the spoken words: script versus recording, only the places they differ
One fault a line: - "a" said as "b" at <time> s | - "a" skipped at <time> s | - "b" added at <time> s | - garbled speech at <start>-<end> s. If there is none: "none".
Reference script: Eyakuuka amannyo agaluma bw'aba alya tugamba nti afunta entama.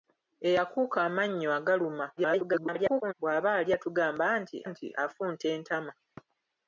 - garbled speech at 2.2-3.1 s
- "nti" added at 4.7 s